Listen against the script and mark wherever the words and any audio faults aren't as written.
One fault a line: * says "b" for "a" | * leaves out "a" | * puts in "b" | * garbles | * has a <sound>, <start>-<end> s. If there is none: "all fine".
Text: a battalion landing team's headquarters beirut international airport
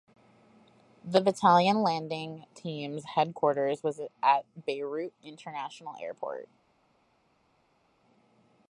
* says "the" for "a"
* puts in "was at"